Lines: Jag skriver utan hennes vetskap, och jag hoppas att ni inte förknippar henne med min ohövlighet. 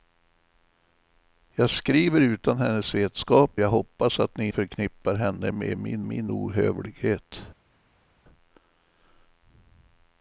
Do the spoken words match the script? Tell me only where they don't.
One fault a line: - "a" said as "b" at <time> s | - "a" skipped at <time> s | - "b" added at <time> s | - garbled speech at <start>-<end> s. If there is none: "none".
- "och" skipped at 3.5 s
- "inte" skipped at 4.5 s
- "min" added at 6.0 s